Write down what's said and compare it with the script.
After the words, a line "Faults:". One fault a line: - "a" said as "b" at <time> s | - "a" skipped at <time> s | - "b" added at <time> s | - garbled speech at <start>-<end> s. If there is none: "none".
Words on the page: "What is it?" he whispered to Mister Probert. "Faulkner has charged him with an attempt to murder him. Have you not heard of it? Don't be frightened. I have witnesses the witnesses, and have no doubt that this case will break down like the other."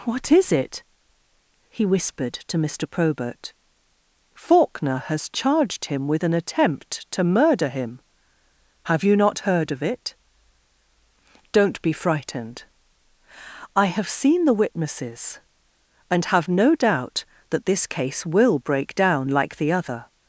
"What is it?" he whispered to Mister Probert. "Faulkner has charged him with an attempt to murder him. Have you not heard of it? Don't be frightened. I have seen the witnesses, and have no doubt that this case will break down like the other."
Faults:
- "witnesses" said as "seen" at 14.1 s